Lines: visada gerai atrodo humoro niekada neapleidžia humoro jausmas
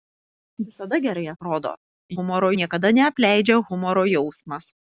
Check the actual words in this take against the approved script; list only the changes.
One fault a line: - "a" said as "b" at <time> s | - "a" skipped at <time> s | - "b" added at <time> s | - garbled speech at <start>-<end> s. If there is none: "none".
none